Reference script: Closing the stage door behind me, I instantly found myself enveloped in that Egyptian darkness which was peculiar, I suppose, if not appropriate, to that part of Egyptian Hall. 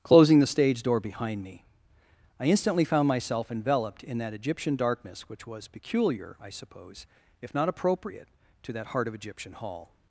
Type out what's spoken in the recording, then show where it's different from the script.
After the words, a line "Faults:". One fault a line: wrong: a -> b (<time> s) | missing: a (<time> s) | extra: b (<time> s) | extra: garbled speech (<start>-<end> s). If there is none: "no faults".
Closing the stage door behind me, I instantly found myself enveloped in that Egyptian darkness which was peculiar, I suppose, if not appropriate, to that heart of Egyptian Hall.
Faults:
wrong: part -> heart (8.9 s)